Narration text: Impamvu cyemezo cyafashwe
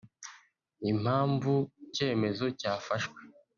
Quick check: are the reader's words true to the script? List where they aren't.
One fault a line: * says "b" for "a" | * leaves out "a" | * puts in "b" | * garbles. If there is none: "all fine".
all fine